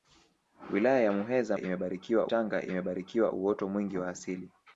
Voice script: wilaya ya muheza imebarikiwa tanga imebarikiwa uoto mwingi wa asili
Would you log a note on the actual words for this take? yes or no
no